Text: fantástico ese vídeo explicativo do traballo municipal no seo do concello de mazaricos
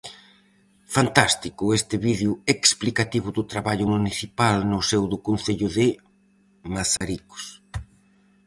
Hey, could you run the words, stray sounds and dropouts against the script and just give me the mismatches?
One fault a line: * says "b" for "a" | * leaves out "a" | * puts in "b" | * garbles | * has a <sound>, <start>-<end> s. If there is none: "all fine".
* says "este" for "ese"
* has a dropout, 7.0-7.0 s